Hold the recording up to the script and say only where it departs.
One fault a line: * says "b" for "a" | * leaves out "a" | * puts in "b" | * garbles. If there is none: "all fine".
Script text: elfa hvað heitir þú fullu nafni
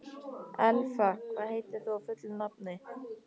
all fine